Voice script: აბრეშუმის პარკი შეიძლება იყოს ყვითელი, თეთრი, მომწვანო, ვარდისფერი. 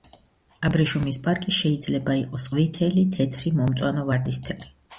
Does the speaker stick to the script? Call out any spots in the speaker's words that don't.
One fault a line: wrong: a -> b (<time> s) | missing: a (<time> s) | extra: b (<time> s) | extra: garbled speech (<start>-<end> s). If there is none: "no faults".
no faults